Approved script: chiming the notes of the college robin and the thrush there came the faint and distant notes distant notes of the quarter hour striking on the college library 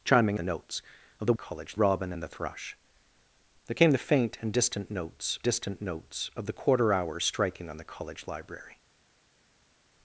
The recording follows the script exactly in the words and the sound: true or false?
true